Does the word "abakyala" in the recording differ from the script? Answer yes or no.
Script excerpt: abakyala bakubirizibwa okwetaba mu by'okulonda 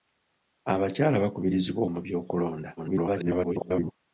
no